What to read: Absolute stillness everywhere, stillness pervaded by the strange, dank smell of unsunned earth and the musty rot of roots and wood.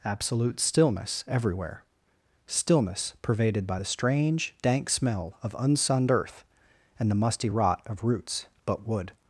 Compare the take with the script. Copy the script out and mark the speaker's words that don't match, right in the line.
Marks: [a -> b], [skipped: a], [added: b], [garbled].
Absolute stillness everywhere, stillness pervaded by the strange, dank smell of unsunned earth and the musty rot of roots [and -> but] wood.